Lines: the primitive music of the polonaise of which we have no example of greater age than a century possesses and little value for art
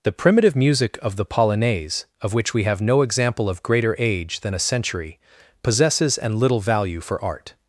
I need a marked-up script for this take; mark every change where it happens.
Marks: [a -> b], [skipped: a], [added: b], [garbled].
the primitive music of the polonaise of which we have no example of greater age than a century possesses and little value for art